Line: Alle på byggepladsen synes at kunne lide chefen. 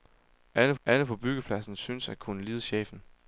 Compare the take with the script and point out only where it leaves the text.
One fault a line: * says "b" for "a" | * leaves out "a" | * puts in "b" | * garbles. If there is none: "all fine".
* puts in "alle"